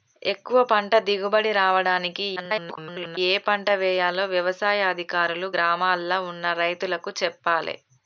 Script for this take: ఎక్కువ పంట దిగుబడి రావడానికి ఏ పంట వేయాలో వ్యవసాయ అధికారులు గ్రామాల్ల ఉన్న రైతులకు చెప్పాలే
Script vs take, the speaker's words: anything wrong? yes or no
yes